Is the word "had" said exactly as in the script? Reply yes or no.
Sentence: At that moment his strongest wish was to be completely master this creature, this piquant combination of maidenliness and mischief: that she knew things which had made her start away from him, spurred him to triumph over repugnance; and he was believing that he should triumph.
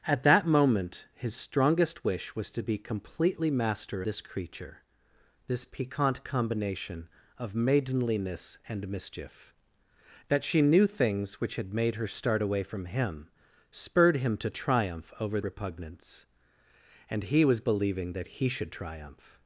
yes